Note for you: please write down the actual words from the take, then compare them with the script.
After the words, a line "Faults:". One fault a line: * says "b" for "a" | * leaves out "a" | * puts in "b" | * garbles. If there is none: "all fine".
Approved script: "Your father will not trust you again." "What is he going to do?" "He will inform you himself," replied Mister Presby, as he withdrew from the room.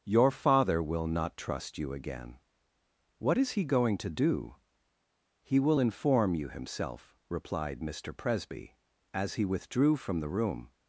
"Your father will not trust you again." "What is he going to do?" "He will inform you himself," replied Mister Presby, as he withdrew from the room.
Faults:
all fine